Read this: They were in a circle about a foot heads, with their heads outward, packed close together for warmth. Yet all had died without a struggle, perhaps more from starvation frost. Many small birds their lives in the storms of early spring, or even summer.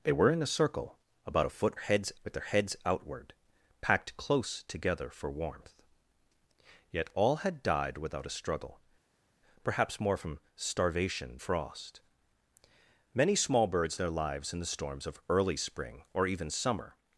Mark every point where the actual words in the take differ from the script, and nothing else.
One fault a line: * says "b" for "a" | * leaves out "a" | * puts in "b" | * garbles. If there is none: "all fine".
all fine